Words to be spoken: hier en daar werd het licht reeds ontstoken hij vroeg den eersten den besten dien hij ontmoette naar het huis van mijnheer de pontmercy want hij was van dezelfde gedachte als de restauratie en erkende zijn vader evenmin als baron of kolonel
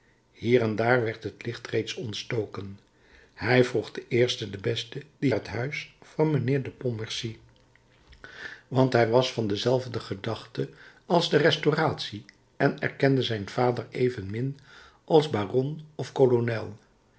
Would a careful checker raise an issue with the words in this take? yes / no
yes